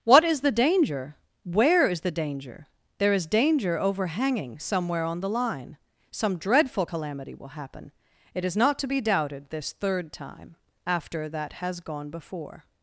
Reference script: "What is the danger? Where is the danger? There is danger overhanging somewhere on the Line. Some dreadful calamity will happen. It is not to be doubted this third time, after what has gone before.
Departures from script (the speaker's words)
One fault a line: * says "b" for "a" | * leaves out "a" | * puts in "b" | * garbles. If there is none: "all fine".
* says "that" for "what"